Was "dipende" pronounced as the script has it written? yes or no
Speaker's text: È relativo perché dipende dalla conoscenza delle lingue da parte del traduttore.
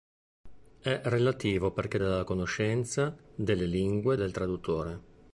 no